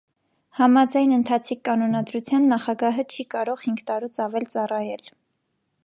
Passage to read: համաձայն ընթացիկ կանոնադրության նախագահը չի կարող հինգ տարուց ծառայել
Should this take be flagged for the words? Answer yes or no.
yes